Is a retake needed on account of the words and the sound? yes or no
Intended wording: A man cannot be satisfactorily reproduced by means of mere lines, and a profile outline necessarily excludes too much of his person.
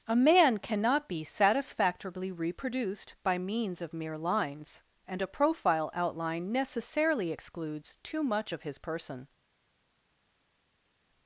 no